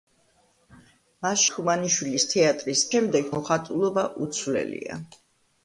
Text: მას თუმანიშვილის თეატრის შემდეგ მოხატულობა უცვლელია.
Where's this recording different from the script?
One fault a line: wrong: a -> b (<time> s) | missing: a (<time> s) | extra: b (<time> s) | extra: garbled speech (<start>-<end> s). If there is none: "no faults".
no faults